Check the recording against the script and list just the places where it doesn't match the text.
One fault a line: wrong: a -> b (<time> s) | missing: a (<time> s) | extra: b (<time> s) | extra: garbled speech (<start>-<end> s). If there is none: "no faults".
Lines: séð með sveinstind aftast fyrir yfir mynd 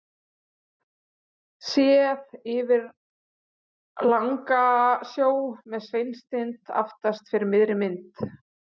extra: yfir langasjó (2.5 s)
wrong: yfir -> miðri (7.6 s)